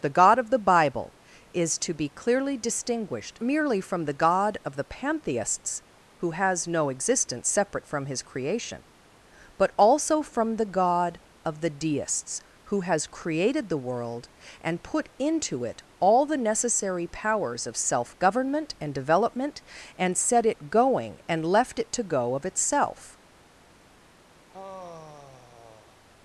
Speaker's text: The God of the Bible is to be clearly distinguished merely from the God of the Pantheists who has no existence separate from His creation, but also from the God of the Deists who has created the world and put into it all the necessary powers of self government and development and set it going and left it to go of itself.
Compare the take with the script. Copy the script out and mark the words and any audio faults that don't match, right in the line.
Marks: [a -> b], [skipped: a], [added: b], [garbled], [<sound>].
The God of the Bible is to be clearly distinguished merely from the God of the Pantheists who has no existence separate from His creation, but also from the God of the Deists who has created the world and put into it all the necessary powers of self government and development and set it going and left it to go of itself. [sigh]